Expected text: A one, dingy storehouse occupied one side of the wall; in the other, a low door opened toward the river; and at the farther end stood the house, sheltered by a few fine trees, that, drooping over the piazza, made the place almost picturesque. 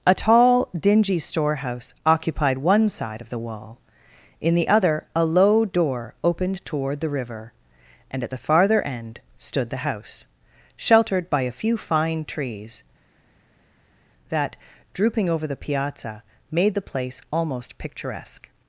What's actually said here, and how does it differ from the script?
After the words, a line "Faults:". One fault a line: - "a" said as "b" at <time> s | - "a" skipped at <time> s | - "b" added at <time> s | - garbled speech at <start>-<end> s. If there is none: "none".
A tall, dingy storehouse occupied one side of the wall; in the other, a low door opened toward the river; and at the farther end stood the house, sheltered by a few fine trees, that, drooping over the piazza, made the place almost picturesque.
Faults:
- "one" said as "tall" at 0.1 s